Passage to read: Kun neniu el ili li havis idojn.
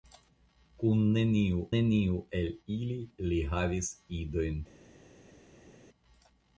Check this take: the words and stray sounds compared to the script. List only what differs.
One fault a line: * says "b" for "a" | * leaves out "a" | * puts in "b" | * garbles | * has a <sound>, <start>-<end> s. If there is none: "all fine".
* puts in "neniu"